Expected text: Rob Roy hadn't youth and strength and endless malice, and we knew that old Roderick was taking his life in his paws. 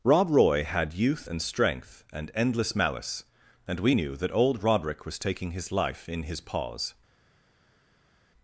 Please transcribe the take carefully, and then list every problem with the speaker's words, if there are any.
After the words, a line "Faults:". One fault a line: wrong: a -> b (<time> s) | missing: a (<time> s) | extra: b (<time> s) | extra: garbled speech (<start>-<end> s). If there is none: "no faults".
Rob Roy had youth and strength and endless malice, and we knew that old Roderick was taking his life in his paws.
Faults:
wrong: hadn't -> had (0.6 s)